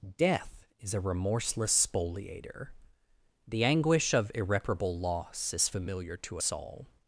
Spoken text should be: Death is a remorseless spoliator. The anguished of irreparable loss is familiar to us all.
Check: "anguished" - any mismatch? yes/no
yes